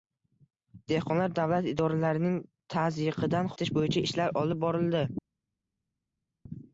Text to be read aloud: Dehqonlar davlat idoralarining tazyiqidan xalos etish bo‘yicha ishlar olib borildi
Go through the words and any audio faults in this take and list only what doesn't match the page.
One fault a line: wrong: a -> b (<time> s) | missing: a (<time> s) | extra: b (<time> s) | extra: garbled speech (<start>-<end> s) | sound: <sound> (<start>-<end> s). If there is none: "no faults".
missing: xalos (3.5 s)